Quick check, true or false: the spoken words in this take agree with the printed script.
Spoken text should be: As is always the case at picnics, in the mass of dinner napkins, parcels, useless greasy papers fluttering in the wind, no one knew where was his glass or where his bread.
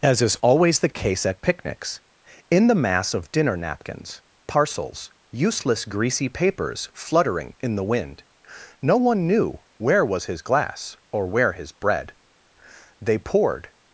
false